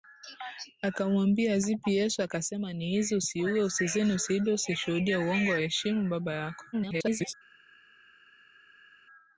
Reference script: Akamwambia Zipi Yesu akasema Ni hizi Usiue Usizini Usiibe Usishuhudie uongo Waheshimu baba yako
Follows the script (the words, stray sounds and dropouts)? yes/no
no